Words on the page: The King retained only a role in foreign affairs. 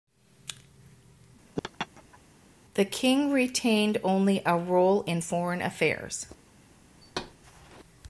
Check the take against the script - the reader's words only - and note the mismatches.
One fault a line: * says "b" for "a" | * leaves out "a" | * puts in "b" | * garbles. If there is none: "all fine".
all fine